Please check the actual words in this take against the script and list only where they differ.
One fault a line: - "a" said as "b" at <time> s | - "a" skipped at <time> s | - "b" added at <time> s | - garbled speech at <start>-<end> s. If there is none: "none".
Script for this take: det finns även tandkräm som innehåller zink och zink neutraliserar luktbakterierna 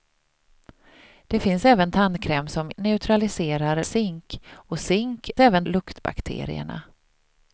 - "innehåller" said as "neutraliserar" at 2.7 s
- "neutraliserar" said as "även" at 5.4 s